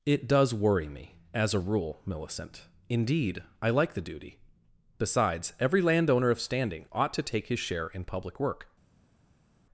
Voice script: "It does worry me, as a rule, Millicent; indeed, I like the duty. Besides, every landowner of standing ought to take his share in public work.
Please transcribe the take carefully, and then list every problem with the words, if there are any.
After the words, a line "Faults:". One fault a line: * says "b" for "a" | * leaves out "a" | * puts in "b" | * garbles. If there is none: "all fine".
"It does worry me, as a rule, Millicent; indeed, I like the duty. Besides, every landowner of standing ought to take his share in public work.
Faults:
all fine